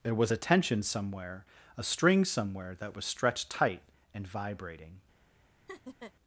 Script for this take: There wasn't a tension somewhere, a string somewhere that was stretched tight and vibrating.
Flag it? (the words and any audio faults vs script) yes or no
yes